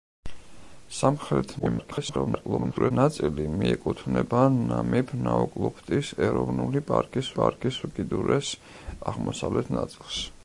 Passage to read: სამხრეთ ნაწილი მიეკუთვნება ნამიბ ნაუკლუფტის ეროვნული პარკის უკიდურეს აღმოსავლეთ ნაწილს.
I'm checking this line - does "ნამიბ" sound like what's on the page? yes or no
yes